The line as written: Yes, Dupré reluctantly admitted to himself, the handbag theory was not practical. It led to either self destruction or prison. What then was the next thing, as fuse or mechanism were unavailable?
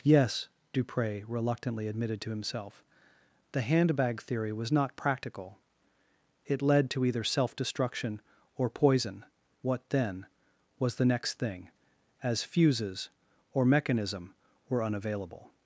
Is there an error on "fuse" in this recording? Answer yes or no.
yes